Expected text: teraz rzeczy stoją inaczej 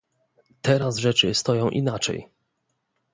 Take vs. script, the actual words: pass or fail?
pass